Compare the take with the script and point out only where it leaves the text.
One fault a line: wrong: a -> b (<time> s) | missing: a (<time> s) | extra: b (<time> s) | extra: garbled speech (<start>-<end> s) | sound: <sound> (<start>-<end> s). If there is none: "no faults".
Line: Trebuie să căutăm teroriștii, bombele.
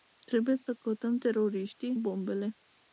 sound: dropout (0.6-0.7 s)